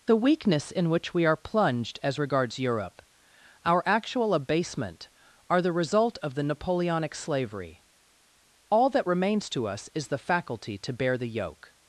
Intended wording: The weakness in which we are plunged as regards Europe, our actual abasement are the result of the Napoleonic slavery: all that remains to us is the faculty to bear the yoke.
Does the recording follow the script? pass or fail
pass